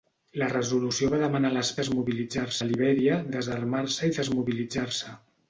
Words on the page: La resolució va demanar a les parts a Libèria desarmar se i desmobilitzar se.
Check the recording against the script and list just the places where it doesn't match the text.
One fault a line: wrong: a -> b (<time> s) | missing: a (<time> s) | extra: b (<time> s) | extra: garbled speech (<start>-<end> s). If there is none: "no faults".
wrong: parts -> desmobilitzar (1.8 s)